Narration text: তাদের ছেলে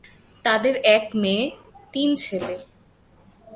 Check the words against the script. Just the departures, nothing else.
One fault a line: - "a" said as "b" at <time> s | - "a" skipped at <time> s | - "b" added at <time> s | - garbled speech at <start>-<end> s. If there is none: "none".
- "এক মেয়ে তিন" added at 0.8 s